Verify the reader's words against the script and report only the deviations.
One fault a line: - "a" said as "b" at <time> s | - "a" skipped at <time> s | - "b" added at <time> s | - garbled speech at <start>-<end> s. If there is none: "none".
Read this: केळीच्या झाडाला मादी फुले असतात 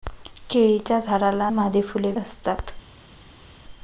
none